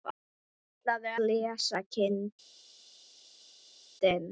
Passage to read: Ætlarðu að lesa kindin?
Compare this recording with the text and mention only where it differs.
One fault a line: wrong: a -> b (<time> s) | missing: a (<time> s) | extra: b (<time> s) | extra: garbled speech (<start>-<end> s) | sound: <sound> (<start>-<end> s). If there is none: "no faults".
no faults